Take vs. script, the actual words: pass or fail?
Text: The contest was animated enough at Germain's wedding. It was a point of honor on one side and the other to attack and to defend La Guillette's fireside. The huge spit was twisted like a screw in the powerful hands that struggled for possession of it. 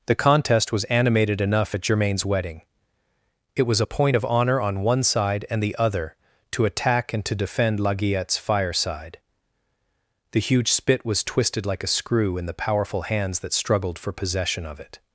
pass